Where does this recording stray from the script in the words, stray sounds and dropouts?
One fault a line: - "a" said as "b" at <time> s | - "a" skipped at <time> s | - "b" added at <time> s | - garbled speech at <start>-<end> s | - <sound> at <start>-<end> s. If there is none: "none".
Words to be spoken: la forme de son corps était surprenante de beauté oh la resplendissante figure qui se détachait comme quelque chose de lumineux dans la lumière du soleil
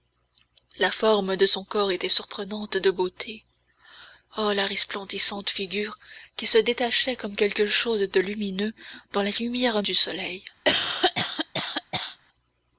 - cough at 10.7-12.2 s